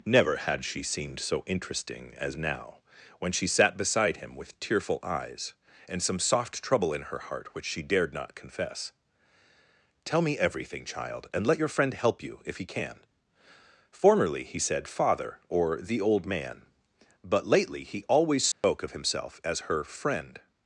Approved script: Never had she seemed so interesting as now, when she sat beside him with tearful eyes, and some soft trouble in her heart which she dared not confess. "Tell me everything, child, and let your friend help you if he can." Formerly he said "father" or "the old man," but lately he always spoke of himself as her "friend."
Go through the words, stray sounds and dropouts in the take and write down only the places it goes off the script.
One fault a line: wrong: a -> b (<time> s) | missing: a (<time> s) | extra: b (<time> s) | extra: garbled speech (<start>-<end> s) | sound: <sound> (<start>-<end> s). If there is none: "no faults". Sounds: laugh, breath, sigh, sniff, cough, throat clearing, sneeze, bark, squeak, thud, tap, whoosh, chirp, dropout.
sound: dropout (18.5-18.6 s)